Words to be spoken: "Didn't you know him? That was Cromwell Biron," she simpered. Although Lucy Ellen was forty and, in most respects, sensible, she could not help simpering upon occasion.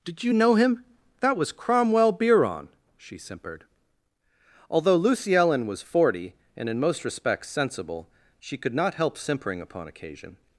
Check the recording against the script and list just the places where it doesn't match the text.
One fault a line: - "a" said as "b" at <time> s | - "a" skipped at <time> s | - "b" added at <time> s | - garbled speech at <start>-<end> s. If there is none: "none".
- "Didn't" said as "Did" at 0.0 s